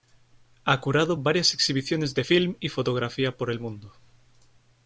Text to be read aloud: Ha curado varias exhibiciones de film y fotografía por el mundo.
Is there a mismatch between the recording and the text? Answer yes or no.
no